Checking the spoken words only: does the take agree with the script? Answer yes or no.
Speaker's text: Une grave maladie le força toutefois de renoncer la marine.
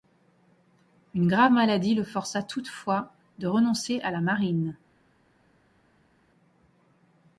no